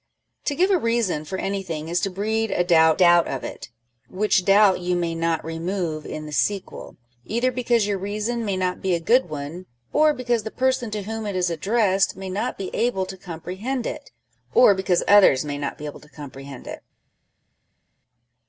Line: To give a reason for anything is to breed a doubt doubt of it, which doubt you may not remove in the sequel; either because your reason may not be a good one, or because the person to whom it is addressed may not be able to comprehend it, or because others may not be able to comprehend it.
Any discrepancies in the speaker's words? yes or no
no